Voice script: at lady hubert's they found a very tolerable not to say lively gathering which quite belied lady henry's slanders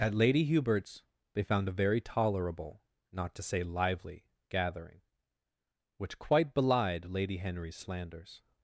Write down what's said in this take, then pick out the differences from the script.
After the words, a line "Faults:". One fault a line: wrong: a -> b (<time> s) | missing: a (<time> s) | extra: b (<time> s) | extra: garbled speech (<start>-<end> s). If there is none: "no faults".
at lady hubert's they found a very tolerable not to say lively gathering which quite belied lady henry's slanders
Faults:
no faults